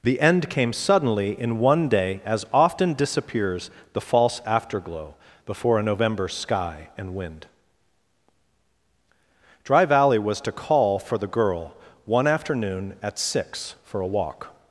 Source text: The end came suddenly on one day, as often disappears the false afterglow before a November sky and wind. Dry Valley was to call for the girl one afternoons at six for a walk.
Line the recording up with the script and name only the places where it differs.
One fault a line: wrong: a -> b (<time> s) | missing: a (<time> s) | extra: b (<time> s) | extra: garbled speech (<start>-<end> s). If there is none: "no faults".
wrong: on -> in (1.4 s)
wrong: afternoons -> afternoon (12.2 s)